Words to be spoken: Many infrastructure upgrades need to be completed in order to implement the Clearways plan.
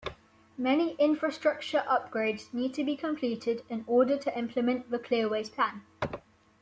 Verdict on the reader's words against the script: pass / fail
pass